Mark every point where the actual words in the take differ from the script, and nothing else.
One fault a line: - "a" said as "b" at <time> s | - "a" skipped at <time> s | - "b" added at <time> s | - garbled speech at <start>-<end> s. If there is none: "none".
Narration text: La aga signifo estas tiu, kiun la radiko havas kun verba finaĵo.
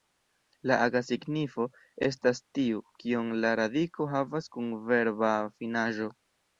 none